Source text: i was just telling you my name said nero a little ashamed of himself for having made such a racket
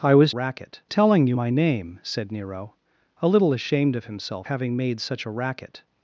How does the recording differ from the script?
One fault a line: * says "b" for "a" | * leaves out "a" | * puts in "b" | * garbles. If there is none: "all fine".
* says "racket" for "just"
* leaves out "for"